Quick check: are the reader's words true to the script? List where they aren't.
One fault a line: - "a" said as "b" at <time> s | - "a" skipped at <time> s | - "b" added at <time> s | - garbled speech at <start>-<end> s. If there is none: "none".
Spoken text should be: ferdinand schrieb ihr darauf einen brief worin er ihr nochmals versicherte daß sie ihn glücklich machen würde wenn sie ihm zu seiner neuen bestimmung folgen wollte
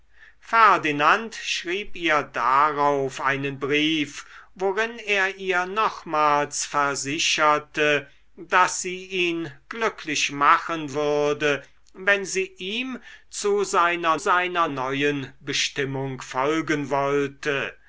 - "seiner" added at 14.2 s